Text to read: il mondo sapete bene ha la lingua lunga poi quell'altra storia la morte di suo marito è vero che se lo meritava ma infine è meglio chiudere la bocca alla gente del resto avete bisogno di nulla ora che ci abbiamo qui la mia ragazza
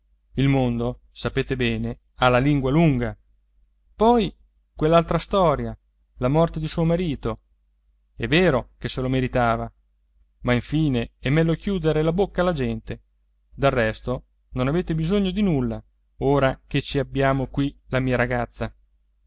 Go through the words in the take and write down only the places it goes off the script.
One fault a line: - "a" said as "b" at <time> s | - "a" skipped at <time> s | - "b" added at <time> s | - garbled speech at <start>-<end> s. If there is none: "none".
- "non" added at 14.5 s